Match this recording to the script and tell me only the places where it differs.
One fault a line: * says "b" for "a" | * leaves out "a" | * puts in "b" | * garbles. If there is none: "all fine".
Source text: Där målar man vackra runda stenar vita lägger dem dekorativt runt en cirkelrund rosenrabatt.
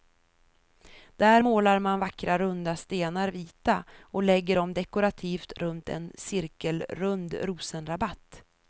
* puts in "och"